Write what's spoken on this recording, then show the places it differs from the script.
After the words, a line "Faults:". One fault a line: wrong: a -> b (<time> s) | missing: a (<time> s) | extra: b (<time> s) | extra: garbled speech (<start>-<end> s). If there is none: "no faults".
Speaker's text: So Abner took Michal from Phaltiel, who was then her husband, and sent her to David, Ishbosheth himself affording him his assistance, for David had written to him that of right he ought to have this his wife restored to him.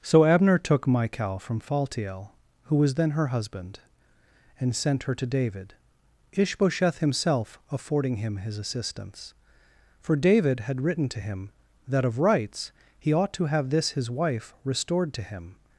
So Abner took Michal from Phaltiel, who was then her husband, and sent her to David, Ishbosheth himself affording him his assistance, for David had written to him that of rights he ought to have this his wife restored to him.
Faults:
wrong: right -> rights (12.2 s)